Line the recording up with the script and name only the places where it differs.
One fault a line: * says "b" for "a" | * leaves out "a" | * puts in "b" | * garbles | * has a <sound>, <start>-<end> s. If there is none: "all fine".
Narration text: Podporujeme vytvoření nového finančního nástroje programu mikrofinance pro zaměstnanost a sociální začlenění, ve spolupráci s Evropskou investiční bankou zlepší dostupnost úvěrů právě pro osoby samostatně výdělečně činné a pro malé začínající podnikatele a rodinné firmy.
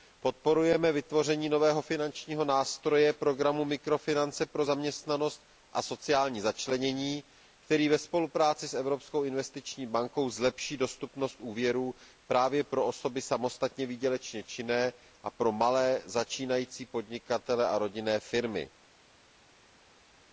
* puts in "který"